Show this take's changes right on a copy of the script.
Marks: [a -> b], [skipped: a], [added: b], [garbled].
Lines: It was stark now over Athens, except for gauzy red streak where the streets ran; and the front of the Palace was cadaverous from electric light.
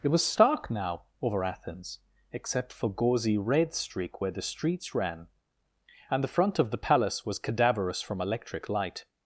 It was stark now over Athens, except for gauzy red streak where the streets ran; and the front of the Palace was cadaverous from electric light.